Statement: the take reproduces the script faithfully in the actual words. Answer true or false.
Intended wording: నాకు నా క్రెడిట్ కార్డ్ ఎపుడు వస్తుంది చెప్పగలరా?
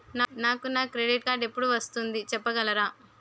true